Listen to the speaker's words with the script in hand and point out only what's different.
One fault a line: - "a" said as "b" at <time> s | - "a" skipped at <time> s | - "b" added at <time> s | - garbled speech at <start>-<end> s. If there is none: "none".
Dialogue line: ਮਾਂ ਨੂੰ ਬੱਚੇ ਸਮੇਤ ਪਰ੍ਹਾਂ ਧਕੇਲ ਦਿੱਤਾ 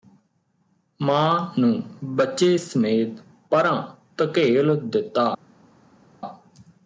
none